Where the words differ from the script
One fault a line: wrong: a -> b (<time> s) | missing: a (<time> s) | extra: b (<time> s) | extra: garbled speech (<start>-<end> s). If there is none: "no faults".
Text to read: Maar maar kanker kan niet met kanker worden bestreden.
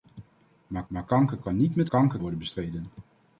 no faults